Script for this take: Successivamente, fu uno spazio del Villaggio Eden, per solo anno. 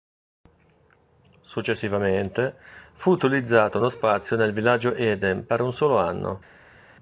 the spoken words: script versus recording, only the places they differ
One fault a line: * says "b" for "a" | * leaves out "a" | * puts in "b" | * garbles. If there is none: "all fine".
* puts in "utilizzato"
* says "nel" for "del"
* puts in "un"